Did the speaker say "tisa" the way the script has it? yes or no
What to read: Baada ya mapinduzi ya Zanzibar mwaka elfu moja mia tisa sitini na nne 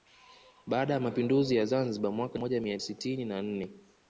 no